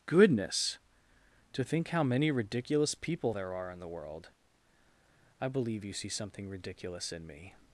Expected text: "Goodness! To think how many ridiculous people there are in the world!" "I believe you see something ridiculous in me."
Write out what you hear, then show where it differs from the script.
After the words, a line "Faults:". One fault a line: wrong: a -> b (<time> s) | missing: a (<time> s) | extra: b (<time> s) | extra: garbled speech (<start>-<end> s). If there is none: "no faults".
"Goodness! To think how many ridiculous people there are in the world!" "I believe you see something ridiculous in me."
Faults:
no faults